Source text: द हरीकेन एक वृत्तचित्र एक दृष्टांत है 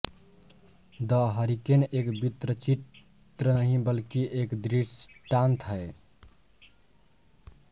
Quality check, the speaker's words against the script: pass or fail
fail